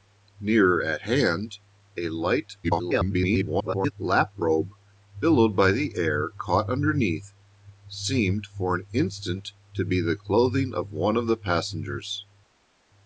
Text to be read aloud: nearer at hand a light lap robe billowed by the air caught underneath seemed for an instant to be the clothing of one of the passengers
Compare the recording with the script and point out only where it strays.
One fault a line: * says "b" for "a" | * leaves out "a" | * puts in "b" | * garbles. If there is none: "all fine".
* garbles